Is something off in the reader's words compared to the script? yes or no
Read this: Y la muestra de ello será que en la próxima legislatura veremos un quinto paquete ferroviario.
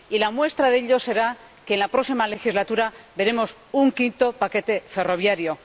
no